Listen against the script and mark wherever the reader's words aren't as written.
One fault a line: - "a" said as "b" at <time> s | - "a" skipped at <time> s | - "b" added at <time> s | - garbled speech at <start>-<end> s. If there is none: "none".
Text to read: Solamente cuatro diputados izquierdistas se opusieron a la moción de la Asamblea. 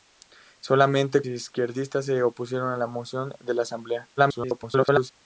- "cuatro diputados" skipped at 1.2 s
- garbled speech at 4.2-5.1 s